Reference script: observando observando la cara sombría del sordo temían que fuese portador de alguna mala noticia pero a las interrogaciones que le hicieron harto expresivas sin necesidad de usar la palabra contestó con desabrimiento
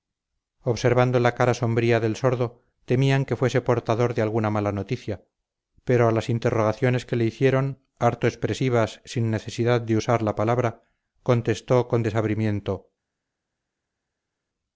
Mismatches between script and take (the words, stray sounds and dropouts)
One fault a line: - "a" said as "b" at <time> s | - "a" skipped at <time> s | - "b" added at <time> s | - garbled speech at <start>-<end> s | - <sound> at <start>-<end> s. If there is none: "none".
- "observando" skipped at 1.2 s